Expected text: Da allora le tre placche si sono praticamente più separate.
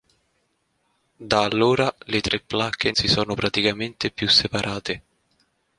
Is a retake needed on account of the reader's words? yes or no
no